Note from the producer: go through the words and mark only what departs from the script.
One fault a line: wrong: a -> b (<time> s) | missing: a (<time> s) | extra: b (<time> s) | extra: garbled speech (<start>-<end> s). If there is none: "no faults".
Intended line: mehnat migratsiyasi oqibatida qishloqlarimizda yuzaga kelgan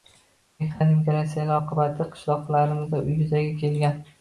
no faults